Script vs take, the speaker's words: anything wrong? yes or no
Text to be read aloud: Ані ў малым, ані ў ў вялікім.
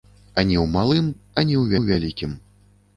no